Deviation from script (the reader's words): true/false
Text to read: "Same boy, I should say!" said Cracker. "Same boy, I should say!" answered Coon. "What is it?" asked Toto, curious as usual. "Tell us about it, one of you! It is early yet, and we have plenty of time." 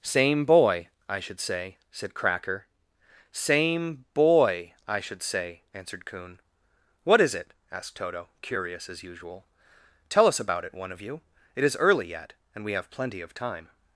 false